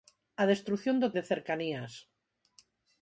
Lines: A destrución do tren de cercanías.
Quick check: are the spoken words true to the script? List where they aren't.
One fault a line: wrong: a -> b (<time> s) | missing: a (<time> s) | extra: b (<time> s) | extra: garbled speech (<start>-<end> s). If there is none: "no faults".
missing: tren (1.1 s)